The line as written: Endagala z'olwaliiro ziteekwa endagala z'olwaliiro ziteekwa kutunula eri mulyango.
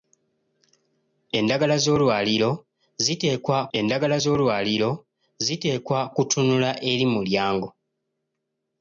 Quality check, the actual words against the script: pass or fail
pass